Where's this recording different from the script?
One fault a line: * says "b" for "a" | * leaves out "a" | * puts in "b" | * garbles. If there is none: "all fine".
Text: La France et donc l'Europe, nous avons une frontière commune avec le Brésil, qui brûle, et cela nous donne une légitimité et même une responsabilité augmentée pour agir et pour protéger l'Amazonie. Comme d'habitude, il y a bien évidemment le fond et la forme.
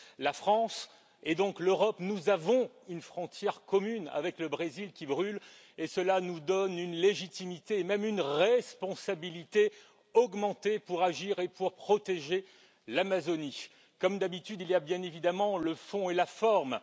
all fine